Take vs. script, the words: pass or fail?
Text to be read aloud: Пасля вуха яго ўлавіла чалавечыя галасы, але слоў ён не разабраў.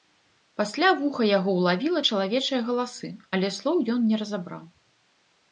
pass